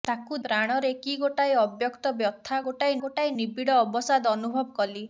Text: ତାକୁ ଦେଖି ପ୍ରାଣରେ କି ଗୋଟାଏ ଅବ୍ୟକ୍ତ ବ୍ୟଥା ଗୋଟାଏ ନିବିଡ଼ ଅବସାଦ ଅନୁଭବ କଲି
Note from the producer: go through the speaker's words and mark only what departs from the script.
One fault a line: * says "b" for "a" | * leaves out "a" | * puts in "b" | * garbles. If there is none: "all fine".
* leaves out "ଦେଖି"
* puts in "ଗୋଟାଏ"